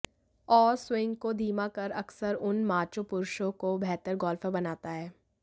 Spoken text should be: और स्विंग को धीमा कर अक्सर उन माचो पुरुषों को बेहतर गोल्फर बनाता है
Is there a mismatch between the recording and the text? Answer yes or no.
no